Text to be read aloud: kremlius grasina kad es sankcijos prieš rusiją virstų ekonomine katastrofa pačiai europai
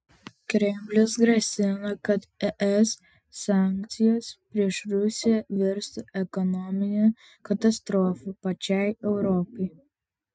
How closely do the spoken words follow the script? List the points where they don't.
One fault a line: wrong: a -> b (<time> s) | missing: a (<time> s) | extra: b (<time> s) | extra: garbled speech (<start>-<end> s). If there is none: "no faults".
no faults